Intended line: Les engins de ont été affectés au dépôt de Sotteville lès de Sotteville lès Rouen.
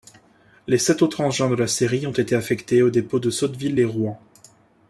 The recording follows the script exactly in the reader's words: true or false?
false